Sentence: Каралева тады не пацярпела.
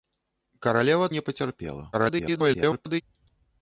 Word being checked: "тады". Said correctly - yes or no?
no